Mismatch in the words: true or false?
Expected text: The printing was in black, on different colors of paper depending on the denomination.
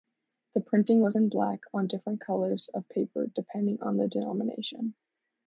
false